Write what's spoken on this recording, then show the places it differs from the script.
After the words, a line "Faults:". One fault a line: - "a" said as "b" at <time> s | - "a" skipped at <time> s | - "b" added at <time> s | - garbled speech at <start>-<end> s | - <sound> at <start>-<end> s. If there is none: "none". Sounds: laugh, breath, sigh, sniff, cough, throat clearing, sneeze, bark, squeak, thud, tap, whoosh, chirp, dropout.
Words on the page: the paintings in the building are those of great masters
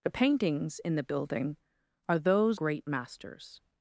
the paintings in the building are those great masters
Faults:
- "of" skipped at 2.6 s